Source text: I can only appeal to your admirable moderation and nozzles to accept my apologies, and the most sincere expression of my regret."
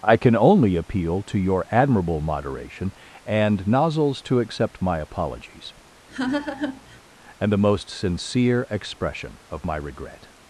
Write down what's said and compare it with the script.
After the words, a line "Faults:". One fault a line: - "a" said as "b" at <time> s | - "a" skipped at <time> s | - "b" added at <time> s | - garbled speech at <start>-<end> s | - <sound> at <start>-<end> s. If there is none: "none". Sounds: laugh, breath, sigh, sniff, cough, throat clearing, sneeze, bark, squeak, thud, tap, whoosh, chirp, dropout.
I can only appeal to your admirable moderation and nozzles to accept my apologies, and the most sincere expression of my regret."
Faults:
- laugh at 6.1-7.0 s